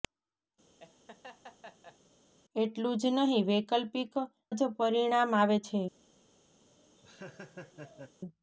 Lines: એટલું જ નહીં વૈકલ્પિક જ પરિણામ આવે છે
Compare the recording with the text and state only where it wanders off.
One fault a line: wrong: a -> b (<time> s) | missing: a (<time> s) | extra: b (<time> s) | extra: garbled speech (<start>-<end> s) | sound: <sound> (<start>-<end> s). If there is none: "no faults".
sound: laugh (0.8-2.0 s)
sound: laugh (6.6-8.2 s)